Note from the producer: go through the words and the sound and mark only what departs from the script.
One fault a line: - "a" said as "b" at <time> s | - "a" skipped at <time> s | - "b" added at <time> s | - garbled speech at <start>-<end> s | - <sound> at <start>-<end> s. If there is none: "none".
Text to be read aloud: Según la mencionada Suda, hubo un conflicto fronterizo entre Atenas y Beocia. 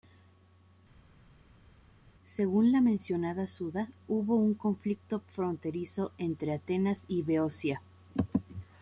none